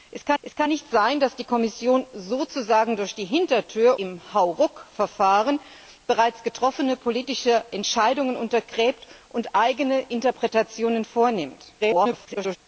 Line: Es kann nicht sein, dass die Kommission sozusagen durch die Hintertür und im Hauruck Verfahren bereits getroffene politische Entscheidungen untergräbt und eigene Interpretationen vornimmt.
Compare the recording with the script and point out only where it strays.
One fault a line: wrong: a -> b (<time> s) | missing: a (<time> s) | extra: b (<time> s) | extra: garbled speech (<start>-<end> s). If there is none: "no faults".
extra: es kann (0.4 s)
missing: und (4.0 s)
extra: garbled speech (11.8-12.6 s)